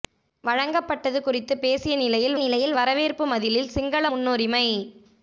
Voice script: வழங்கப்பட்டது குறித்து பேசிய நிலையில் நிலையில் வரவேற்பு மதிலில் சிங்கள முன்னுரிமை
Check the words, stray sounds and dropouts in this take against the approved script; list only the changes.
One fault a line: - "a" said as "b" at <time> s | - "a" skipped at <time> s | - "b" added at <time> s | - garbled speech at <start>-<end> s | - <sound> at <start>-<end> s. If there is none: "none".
none